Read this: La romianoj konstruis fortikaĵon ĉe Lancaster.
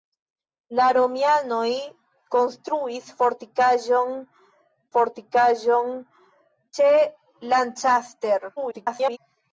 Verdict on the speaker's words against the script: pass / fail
fail